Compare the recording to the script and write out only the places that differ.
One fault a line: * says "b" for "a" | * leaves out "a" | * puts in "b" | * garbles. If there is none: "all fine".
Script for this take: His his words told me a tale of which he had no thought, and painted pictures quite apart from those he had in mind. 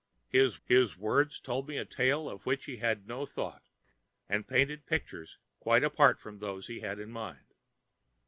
all fine